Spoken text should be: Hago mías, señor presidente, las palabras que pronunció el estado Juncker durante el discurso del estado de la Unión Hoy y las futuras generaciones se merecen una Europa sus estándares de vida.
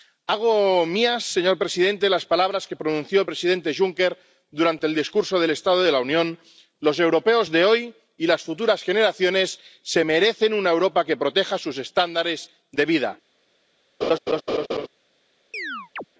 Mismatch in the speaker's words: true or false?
true